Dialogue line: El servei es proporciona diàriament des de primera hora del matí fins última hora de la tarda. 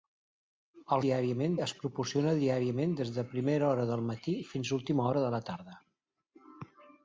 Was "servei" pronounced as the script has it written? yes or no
no